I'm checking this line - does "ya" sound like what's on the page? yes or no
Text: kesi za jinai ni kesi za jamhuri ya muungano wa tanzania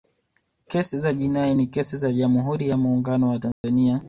yes